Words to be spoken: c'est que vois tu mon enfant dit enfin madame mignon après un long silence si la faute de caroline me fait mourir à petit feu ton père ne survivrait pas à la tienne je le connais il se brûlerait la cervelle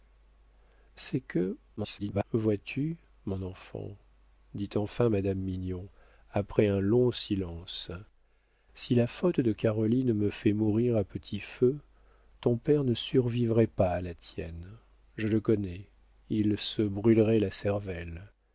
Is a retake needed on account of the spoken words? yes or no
yes